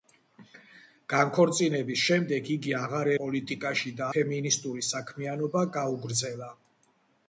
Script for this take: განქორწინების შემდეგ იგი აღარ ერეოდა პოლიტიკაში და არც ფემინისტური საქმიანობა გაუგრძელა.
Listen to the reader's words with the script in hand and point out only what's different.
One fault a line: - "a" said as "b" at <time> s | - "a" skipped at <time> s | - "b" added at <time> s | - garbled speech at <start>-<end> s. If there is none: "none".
- "ერეოდა" skipped at 3.1 s
- "არც" skipped at 4.1 s